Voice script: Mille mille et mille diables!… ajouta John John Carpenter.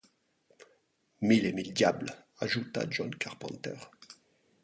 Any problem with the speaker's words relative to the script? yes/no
yes